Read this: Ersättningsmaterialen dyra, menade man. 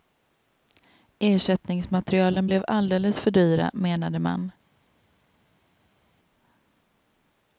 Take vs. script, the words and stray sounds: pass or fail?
fail